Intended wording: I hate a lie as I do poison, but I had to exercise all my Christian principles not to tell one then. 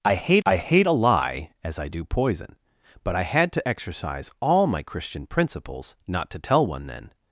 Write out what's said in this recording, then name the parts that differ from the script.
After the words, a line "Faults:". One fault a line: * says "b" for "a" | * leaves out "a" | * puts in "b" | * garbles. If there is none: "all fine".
I hate I hate a lie as I do poison, but I had to exercise all my Christian principles not to tell one then.
Faults:
* puts in "I hate"